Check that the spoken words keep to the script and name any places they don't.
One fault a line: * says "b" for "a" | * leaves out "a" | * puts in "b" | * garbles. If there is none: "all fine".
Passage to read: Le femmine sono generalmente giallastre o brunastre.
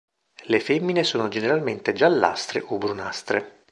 all fine